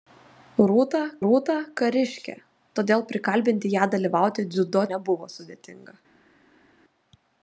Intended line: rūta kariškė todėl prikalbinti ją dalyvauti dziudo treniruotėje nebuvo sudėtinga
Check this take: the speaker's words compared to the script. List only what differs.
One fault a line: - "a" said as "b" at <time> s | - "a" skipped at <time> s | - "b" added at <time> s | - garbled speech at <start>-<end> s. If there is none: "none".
- "rūta" added at 1.2 s
- "treniruotėje" skipped at 4.9 s